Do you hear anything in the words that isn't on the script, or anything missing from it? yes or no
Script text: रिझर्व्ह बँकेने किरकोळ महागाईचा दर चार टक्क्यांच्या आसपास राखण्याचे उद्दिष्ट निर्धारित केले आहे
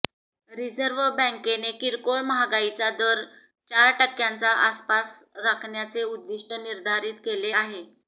no